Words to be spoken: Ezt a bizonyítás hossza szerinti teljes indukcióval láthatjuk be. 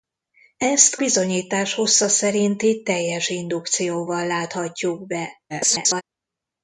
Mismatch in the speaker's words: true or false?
true